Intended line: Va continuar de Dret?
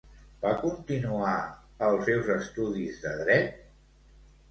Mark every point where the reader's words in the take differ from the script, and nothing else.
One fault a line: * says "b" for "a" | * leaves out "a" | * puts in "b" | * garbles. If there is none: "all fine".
* puts in "els seus estudis"